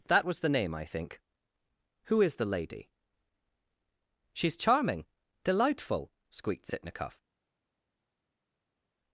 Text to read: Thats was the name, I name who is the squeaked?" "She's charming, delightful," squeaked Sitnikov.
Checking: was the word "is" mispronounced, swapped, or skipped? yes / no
no